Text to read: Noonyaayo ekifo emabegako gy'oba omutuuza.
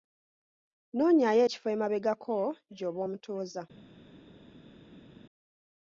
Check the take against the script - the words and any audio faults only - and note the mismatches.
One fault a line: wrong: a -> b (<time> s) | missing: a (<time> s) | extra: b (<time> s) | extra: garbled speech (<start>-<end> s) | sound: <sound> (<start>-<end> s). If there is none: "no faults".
no faults